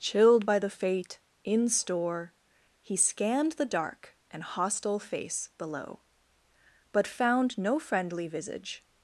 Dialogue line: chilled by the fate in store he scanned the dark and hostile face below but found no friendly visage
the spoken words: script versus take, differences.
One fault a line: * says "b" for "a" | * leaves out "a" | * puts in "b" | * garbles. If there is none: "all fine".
all fine